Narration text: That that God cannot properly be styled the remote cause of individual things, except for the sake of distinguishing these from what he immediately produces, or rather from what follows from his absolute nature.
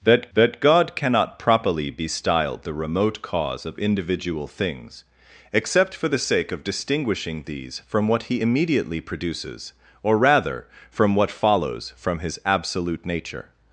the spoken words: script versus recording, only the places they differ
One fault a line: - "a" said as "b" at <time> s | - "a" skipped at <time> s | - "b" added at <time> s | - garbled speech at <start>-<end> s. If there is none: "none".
none